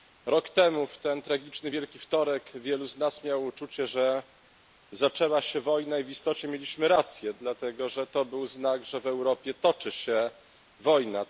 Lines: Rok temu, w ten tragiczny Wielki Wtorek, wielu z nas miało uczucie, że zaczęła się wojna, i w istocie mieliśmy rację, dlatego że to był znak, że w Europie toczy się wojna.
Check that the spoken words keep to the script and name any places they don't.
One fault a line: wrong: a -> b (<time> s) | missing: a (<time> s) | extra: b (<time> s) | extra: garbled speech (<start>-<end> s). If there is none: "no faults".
no faults